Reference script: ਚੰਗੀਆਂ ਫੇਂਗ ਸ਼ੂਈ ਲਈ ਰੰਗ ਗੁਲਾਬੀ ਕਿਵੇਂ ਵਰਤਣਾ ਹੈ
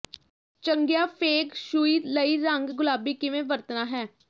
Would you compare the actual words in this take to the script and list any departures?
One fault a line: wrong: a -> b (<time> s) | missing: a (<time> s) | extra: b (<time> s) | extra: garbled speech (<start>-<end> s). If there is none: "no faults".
no faults